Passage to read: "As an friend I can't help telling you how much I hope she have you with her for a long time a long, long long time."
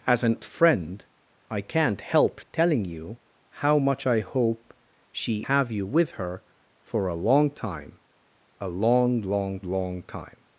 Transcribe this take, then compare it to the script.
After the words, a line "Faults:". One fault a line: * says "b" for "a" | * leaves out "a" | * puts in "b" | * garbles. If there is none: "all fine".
"As an friend I can't help telling you how much I hope she have you with her for a long time a long, long long time."
Faults:
all fine